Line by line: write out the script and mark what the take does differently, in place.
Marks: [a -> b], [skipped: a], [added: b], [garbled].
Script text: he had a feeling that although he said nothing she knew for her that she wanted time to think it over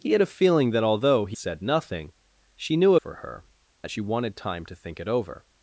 he had a feeling that although he said nothing she knew for her that she wanted time to think it over